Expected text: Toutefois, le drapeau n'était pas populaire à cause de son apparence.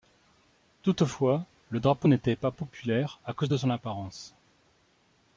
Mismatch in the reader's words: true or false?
false